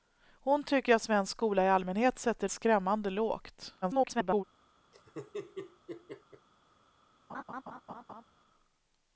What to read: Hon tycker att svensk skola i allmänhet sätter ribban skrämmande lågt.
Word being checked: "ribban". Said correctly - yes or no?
no